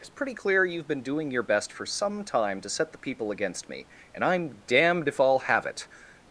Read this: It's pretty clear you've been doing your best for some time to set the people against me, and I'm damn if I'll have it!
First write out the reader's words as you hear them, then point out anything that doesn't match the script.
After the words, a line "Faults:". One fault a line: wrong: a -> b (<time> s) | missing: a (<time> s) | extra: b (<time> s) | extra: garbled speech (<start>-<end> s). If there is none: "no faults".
It's pretty clear you've been doing your best for some time to set the people against me, and I'm damned if I'll have it!
Faults:
wrong: damn -> damned (4.7 s)